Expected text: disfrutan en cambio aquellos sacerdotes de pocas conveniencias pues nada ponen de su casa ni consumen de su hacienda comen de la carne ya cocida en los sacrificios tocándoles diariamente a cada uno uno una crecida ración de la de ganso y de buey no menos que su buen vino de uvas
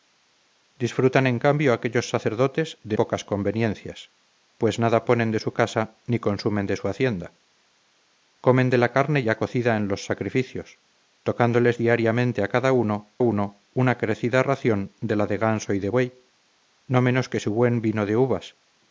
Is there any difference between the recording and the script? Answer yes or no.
no